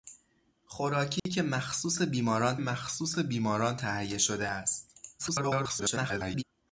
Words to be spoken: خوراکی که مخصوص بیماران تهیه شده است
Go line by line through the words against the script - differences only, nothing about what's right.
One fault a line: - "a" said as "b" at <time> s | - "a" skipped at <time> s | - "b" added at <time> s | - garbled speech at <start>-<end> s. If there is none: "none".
- "مخصوص بیماران" added at 2.5 s
- garbled speech at 5.2-6.4 s